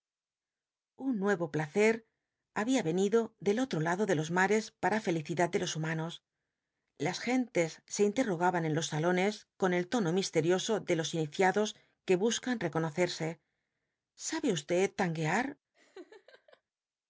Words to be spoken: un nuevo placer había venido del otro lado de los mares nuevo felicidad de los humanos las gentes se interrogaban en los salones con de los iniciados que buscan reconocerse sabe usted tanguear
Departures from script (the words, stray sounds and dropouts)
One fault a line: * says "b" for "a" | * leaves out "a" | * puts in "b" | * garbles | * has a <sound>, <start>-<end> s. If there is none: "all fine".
* says "para" for "nuevo"
* puts in "el tono misterioso"
* has a laugh, 15.7-16.6 s